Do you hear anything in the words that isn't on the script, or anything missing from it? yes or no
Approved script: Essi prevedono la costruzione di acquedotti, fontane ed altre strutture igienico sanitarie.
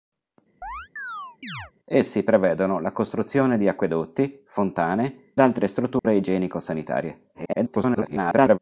yes